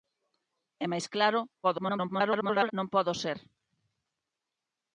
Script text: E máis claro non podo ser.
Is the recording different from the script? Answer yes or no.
yes